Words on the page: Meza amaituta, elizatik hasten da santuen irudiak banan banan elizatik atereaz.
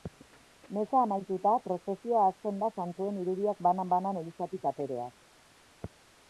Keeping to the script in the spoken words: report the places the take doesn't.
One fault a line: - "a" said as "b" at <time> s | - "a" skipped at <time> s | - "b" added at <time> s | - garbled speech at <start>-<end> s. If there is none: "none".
- "elizatik" said as "prozesioa" at 1.6 s